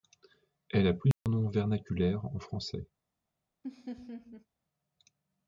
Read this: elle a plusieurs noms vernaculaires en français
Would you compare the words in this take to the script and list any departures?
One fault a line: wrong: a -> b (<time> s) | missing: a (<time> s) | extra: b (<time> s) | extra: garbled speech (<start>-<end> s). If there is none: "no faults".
no faults